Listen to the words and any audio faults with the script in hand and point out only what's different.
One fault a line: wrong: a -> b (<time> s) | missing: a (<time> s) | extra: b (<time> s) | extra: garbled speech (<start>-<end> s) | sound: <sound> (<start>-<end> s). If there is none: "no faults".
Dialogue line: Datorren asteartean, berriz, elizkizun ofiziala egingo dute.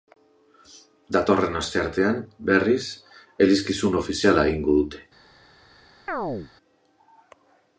sound: chirp (6.1-6.5 s)